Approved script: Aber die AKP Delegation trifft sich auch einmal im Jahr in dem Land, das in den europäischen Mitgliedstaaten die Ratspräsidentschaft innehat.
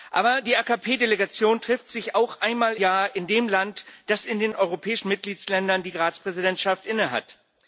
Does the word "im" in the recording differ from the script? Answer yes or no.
yes